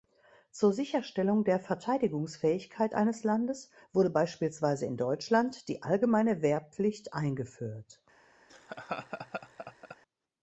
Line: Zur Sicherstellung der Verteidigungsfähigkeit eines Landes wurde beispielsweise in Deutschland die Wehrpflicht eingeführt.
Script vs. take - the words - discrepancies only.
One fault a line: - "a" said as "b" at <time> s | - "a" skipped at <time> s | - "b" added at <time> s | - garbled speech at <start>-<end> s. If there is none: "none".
- "allgemeine" added at 5.8 s